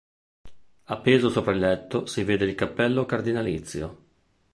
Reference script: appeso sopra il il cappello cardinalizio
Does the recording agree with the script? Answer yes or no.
no